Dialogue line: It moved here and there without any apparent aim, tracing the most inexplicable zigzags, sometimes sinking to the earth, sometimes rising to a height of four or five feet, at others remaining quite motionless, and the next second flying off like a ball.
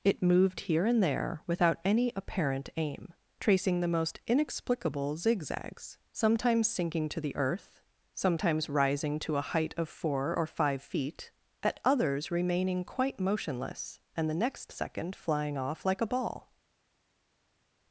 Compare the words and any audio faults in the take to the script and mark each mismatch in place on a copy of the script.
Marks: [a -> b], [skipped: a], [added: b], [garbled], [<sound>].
It moved here and there without any apparent aim, tracing the most inexplicable zigzags, sometimes sinking to the earth, sometimes rising to a height of four or five feet, at others remaining quite motionless, and the next second flying off like a ball.